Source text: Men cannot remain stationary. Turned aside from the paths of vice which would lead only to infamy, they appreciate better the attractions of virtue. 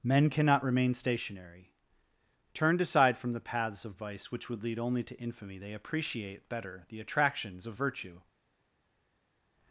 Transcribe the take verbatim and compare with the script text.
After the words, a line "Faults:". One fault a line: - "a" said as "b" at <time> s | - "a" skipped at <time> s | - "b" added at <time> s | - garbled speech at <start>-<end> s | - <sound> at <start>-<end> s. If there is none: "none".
Men cannot remain stationary. Turned aside from the paths of vice which would lead only to infamy, they appreciate better the attractions of virtue.
Faults:
none